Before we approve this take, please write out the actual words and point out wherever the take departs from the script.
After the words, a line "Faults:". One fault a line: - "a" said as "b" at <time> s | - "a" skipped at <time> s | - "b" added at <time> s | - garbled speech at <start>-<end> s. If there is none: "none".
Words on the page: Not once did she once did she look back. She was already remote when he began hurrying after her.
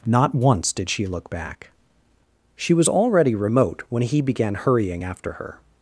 Not once did she look back. She was already remote when he began hurrying after her.
Faults:
- "once did she" skipped at 1.1 s